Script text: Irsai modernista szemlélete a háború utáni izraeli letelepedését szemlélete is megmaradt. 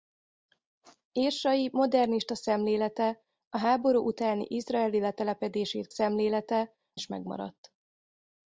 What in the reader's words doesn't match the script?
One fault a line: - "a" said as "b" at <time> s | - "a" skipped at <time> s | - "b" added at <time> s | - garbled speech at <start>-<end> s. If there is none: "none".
none